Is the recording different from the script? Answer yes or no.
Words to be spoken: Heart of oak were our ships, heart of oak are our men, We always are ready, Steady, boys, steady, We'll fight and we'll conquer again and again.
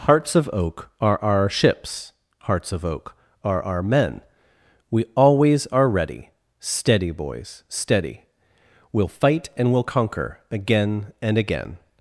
yes